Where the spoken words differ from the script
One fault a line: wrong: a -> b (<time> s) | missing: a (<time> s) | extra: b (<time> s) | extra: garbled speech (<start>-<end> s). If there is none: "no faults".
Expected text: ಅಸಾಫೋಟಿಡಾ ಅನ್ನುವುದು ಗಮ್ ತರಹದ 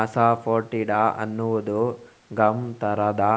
no faults